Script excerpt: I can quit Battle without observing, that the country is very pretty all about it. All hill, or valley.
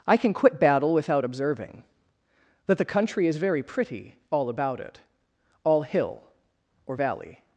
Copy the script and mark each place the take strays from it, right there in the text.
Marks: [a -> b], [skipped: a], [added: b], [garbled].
I can quit Battle without observing, that the country is very pretty all about it. All hill, or valley.